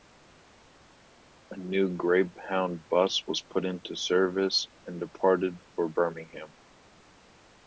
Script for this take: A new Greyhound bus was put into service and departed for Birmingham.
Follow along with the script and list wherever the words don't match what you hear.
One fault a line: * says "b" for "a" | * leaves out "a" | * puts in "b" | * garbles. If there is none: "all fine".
all fine